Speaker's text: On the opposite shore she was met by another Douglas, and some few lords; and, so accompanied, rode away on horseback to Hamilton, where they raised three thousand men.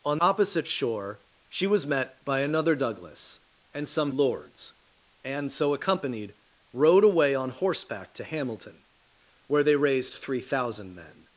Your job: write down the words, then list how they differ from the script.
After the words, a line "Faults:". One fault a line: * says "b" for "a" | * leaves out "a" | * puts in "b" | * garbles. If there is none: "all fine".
On opposite shore she was met by another Douglas, and some lords; and, so accompanied, rode away on horseback to Hamilton, where they raised three thousand men.
Faults:
* leaves out "the"
* leaves out "few"